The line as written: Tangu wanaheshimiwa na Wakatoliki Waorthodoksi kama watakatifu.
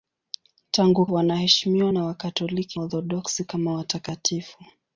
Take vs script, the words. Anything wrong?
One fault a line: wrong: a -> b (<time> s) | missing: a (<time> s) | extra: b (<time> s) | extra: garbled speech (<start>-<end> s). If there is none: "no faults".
no faults